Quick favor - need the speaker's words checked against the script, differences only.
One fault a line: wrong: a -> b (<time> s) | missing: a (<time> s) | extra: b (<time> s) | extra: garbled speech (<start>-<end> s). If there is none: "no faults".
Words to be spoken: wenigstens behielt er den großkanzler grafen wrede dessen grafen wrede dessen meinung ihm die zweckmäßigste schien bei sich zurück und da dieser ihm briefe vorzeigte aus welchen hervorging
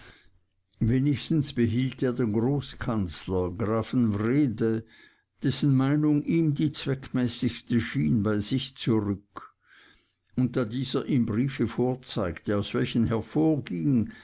missing: grafen wrede dessen (5.7 s)